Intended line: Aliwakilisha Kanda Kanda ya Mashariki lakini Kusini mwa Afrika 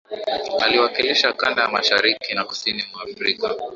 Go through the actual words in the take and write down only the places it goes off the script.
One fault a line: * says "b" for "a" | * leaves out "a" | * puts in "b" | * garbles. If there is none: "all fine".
* leaves out "Kanda"
* says "na" for "lakini"